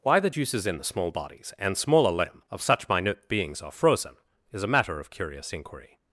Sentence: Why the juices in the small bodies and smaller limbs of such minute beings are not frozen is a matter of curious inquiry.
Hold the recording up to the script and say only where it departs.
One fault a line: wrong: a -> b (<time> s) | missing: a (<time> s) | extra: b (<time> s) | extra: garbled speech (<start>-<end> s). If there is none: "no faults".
wrong: limbs -> limb (2.1 s)
missing: not (3.7 s)